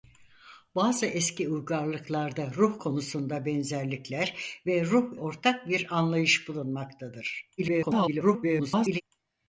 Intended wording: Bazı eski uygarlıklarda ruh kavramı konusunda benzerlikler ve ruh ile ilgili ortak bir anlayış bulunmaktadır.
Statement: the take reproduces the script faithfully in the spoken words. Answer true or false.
false